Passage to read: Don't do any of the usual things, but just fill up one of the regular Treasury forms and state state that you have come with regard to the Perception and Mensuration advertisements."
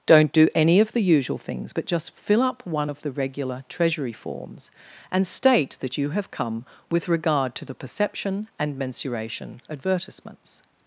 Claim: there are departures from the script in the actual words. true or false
true